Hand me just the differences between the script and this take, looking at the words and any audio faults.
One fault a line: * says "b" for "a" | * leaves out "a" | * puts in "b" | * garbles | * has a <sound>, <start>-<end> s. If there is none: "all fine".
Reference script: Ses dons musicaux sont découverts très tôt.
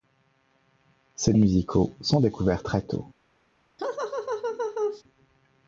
* leaves out "dons"
* has a laugh, 3.8-5.0 s